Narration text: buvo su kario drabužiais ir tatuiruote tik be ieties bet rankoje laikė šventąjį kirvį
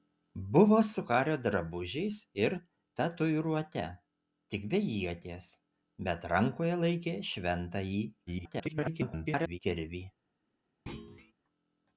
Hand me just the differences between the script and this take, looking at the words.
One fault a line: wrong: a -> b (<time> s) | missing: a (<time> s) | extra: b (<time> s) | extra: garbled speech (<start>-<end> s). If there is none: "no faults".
extra: garbled speech (8.3-9.6 s)